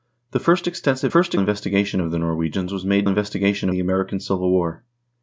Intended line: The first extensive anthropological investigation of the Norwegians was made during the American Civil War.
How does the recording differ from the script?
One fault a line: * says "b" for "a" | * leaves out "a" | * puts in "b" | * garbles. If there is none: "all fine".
* says "first" for "anthropological"
* says "investigation" for "during"